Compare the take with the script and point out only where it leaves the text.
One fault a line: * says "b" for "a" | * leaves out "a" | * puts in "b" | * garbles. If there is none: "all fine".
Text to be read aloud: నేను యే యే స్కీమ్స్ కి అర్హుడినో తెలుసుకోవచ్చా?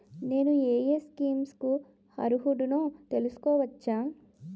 all fine